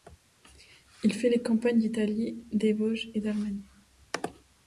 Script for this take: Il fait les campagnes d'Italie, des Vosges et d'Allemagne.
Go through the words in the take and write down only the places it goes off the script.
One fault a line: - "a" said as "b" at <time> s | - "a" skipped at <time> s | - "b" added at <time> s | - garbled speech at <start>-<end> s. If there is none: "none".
none